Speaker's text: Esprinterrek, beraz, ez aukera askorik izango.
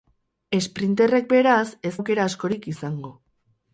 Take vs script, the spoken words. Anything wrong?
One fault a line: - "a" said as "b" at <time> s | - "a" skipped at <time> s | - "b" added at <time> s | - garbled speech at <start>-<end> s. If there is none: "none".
none